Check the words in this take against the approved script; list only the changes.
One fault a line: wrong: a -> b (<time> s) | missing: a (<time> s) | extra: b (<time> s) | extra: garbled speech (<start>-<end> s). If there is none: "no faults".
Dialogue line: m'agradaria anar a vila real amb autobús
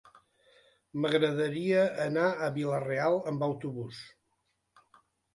no faults